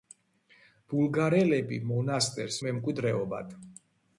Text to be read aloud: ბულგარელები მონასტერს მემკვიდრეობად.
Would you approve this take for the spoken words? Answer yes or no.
yes